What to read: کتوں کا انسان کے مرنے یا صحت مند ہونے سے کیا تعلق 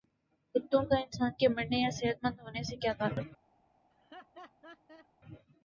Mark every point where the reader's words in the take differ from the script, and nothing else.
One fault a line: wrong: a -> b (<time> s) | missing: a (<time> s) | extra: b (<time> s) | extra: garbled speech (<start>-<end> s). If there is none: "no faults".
no faults